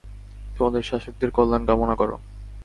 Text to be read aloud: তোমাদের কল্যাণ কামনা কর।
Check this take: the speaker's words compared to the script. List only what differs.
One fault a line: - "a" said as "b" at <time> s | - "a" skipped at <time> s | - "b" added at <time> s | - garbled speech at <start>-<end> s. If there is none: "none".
- "শাসকদের" added at 0.8 s